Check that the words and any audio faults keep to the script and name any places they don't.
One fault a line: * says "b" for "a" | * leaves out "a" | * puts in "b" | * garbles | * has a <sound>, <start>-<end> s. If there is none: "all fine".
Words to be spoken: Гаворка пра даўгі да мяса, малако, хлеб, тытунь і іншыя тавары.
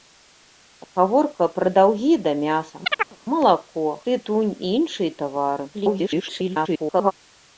* has a chirp, 2.9-3.2 s
* leaves out "хлеб"
* garbles